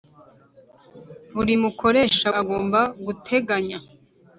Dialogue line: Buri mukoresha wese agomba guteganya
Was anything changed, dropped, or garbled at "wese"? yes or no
yes